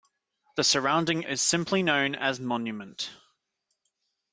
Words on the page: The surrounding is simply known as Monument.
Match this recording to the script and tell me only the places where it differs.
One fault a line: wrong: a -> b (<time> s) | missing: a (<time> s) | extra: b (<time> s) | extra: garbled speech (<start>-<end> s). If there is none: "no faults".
no faults